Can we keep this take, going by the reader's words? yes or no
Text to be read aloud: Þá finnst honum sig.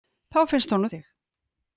yes